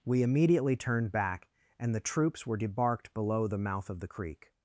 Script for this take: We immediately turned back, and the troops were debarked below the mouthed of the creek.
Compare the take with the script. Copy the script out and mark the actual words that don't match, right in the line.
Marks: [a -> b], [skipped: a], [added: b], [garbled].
We immediately turned back, and the troops were debarked below the [mouthed -> mouth] of the creek.